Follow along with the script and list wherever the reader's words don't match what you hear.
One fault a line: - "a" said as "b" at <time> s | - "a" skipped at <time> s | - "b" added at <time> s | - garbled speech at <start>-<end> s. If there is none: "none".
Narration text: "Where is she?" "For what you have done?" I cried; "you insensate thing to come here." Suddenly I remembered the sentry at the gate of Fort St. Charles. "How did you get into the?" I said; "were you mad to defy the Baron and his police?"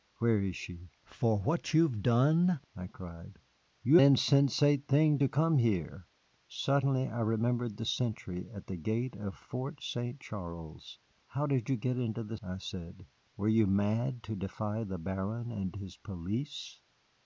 none